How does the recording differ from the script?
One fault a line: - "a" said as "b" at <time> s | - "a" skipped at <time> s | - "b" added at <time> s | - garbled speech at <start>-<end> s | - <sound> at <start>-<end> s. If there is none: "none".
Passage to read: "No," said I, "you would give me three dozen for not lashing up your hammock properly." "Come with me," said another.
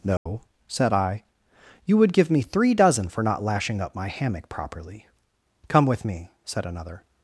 - dropout at 0.2-0.3 s
- "your" said as "my" at 3.9 s